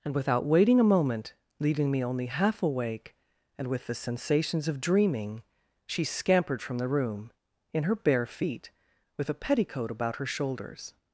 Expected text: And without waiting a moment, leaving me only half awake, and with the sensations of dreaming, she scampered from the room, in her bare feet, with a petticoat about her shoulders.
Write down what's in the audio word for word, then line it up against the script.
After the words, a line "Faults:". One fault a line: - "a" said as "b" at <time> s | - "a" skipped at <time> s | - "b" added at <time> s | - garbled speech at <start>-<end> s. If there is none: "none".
And without waiting a moment, leaving me only half awake, and with the sensations of dreaming, she scampered from the room, in her bare feet, with a petticoat about her shoulders.
Faults:
none